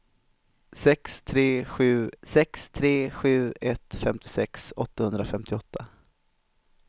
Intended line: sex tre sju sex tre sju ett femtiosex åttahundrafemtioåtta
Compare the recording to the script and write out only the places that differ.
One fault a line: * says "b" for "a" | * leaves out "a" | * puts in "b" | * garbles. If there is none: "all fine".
all fine